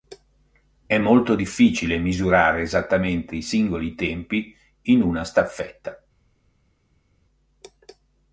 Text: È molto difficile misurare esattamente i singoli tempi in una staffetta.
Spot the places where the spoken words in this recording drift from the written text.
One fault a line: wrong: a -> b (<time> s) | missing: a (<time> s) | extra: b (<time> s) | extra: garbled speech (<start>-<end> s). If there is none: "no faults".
no faults